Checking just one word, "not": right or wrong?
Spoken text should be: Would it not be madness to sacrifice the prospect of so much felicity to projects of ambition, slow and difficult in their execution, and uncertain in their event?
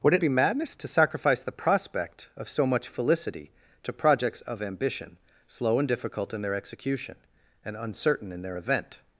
wrong